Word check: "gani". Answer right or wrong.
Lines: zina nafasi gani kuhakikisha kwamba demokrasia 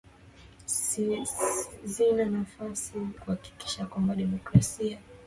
wrong